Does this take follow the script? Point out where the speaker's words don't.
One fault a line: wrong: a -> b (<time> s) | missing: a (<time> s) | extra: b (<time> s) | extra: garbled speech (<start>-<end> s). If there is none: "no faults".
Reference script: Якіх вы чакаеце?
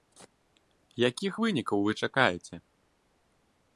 extra: вынікаў (1.4 s)